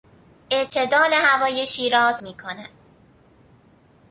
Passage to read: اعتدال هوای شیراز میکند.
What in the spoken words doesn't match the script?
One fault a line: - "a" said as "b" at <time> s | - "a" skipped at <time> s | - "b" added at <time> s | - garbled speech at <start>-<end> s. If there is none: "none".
none